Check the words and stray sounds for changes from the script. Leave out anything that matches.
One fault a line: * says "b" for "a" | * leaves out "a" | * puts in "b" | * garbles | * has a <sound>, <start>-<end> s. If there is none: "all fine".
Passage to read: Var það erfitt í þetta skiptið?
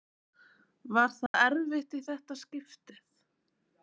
* has a dropout, 1.3-1.3 s